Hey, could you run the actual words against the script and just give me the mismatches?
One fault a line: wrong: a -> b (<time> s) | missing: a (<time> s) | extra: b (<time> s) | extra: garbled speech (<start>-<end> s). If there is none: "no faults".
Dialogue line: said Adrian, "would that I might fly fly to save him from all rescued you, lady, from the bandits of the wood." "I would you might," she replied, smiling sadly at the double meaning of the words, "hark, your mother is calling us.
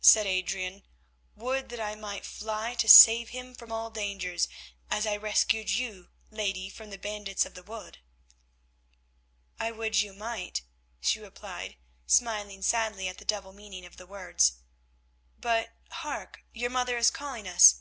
missing: fly (2.7 s)
extra: dangers as I (3.9 s)
extra: but (15.4 s)